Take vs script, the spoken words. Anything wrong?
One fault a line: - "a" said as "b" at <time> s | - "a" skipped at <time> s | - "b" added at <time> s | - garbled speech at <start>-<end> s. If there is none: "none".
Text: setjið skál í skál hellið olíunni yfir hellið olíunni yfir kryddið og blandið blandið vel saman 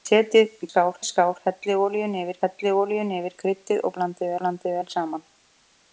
none